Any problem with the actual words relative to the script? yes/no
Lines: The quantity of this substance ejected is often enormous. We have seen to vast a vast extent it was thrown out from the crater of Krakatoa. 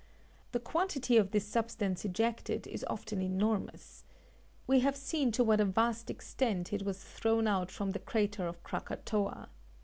yes